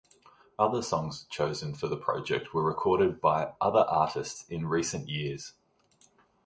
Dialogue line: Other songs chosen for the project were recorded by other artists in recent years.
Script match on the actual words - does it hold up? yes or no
yes